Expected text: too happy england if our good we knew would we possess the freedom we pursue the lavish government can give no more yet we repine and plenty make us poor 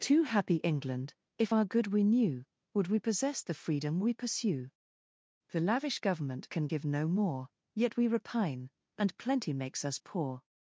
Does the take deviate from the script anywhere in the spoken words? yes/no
yes